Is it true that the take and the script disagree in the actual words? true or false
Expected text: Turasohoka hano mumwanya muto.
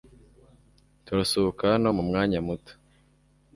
false